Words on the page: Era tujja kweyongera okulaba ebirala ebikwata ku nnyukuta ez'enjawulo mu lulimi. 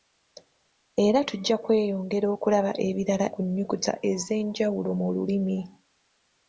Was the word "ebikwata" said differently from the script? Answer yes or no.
yes